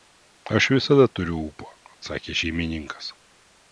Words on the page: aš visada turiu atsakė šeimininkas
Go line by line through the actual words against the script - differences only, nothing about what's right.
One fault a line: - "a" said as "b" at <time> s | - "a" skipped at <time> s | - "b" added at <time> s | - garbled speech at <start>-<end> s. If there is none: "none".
- "ūpo" added at 1.5 s